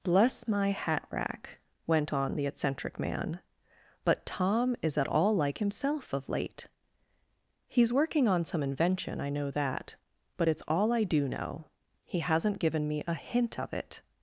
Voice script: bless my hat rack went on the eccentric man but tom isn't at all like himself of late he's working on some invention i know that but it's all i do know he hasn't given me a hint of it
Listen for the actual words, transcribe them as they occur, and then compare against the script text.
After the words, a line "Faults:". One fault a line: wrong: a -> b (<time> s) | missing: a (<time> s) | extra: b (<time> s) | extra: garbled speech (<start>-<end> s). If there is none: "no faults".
bless my hat rack went on the eccentric man but tom is at all like himself of late he's working on some invention i know that but it's all i do know he hasn't given me a hint of it
Faults:
wrong: isn't -> is (4.8 s)